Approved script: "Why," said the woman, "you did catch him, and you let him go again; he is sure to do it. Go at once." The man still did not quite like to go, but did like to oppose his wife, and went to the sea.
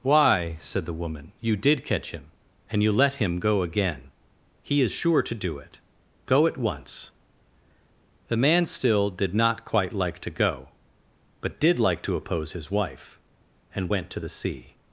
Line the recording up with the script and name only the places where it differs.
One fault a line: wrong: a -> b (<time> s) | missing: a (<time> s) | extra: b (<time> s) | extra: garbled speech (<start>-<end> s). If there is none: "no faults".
no faults